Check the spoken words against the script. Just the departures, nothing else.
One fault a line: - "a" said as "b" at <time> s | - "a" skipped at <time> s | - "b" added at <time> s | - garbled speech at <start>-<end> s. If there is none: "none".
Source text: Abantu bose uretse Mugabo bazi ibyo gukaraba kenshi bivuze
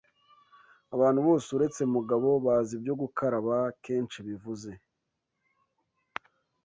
none